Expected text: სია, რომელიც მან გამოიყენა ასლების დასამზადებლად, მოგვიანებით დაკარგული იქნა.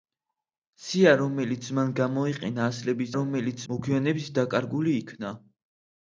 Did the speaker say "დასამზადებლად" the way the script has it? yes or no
no